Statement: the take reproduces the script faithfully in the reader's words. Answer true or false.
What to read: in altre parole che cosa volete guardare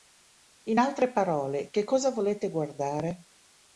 true